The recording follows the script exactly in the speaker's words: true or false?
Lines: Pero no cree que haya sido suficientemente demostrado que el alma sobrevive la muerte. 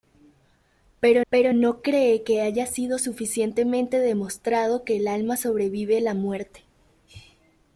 false